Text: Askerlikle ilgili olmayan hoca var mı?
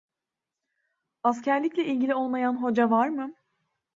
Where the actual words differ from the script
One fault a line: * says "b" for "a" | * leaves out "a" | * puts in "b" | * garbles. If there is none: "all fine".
all fine